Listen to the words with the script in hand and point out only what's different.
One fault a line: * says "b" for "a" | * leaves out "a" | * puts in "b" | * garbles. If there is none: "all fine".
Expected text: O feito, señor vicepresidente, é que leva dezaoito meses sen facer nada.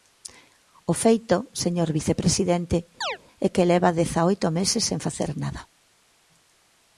all fine